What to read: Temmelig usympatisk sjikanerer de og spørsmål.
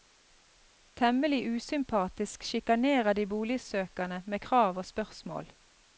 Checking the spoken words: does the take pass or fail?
fail